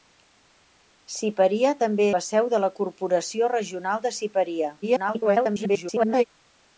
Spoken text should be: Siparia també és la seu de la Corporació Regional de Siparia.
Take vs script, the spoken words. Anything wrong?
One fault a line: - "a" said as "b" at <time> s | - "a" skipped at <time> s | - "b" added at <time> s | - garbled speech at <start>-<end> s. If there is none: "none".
- "és" skipped at 2.1 s
- garbled speech at 4.8-6.2 s